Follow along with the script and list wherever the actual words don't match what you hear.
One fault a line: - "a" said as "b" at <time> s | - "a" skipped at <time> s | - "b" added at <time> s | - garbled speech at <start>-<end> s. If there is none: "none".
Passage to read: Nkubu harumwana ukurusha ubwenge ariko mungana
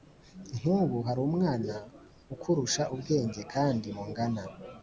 - "ariko" said as "kandi" at 3.5 s